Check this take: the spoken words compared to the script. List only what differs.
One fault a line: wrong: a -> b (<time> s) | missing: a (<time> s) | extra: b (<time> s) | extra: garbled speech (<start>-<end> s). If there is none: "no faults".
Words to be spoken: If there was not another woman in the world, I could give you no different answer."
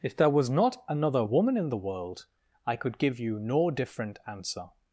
no faults